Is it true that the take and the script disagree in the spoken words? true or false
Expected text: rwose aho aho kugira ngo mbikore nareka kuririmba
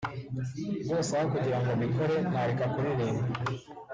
true